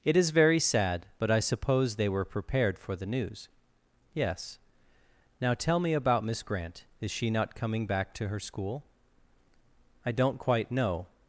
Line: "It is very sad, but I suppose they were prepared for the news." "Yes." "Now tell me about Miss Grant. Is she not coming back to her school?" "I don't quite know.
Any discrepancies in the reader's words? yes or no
no